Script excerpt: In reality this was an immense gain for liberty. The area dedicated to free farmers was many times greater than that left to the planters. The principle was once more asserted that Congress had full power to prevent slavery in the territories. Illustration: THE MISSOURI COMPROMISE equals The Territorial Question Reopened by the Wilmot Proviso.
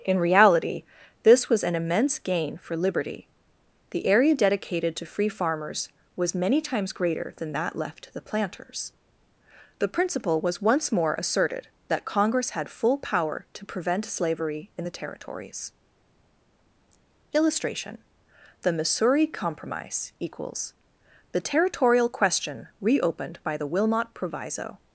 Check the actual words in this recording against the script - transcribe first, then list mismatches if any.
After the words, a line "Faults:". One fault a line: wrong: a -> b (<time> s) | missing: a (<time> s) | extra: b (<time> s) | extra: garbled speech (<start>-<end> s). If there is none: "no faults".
In reality this was an immense gain for liberty. The area dedicated to free farmers was many times greater than that left to the planters. The principle was once more asserted that Congress had full power to prevent slavery in the territories. Illustration: THE MISSOURI COMPROMISE equals The Territorial Question Reopened by the Wilmot Proviso.
Faults:
no faults